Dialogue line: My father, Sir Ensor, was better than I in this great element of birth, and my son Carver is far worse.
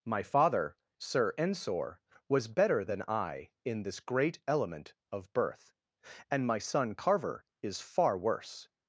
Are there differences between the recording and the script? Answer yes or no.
no